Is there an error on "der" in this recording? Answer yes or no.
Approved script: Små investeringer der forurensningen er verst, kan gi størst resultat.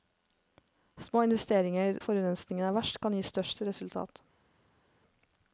yes